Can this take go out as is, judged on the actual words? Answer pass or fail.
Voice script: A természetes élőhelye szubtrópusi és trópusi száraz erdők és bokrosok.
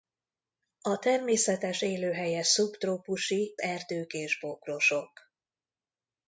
fail